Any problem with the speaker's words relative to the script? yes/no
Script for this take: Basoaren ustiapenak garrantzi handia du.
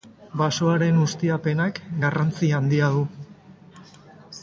no